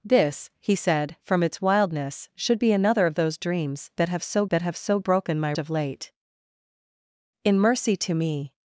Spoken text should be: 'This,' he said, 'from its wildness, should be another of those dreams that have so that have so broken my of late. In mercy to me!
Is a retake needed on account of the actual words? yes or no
no